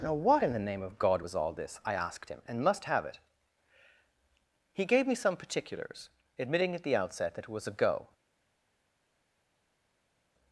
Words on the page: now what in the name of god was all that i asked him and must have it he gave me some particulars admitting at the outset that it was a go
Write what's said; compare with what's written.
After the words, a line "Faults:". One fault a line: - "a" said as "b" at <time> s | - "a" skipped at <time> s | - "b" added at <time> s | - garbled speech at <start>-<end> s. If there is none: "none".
now what in the name of god was all this i asked him and must have it he gave me some particulars admitting at the outset that it was a go
Faults:
- "that" said as "this" at 1.5 s